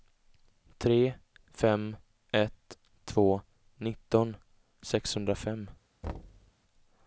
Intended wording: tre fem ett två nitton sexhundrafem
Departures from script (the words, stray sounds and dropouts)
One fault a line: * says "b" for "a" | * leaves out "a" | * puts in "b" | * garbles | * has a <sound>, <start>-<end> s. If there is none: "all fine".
* has a thud, 6.0-6.5 s